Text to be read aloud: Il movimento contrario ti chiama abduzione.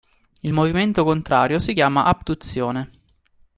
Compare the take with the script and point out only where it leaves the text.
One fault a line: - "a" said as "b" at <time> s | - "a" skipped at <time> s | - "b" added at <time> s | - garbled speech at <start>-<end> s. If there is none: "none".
- "ti" said as "si" at 1.6 s